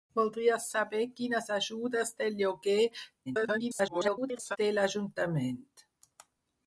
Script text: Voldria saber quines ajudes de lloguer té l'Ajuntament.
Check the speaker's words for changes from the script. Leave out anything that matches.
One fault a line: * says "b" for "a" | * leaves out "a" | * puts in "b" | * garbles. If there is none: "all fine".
* garbles